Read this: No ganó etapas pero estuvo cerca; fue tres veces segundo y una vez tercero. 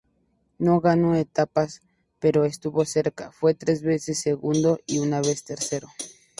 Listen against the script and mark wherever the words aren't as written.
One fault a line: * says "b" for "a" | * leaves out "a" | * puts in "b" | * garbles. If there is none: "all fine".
all fine